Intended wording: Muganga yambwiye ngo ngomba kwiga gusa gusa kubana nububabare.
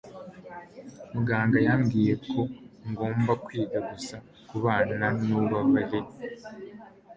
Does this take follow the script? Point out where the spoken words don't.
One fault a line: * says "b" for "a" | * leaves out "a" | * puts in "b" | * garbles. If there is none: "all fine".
* says "ko" for "ngo"
* leaves out "gusa"